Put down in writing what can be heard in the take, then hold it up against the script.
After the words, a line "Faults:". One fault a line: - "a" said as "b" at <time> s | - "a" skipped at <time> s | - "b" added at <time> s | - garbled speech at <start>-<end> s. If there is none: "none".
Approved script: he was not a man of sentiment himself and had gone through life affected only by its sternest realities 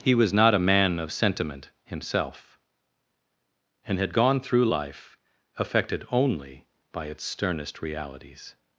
he was not a man of sentiment himself and had gone through life affected only by its sternest realities
Faults:
none